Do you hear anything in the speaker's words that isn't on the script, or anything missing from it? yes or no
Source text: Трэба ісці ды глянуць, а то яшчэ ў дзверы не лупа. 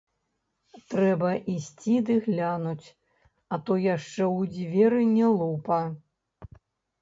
no